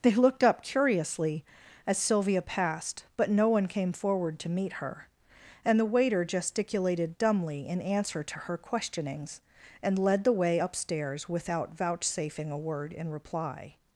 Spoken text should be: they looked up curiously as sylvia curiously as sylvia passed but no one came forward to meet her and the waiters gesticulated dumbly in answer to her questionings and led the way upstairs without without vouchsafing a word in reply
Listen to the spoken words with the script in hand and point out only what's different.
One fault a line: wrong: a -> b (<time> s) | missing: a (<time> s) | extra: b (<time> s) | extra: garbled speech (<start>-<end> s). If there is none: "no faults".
missing: curiously as sylvia (2.4 s)
wrong: waiters -> waiter (5.8 s)
missing: without (11.8 s)